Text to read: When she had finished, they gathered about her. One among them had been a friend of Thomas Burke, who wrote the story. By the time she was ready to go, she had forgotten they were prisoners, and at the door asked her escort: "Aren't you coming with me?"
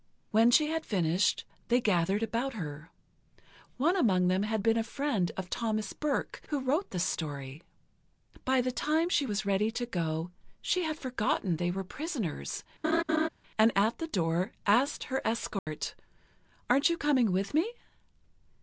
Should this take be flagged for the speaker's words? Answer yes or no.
no